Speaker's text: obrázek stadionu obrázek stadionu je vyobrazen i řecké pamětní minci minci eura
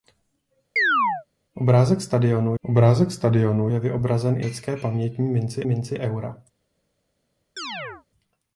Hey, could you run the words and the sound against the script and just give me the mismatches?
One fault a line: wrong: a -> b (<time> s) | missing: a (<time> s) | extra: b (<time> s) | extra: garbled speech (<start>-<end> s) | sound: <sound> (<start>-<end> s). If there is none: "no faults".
sound: chirp (0.8-1.3 s)
sound: chirp (7.6-8.0 s)